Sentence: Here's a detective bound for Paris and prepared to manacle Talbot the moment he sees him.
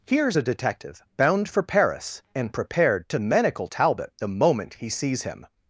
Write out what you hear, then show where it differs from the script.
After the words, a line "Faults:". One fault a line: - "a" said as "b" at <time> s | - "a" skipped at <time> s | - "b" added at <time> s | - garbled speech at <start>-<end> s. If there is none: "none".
Here's a detective bound for Paris and prepared to manacle Talbot the moment he sees him.
Faults:
none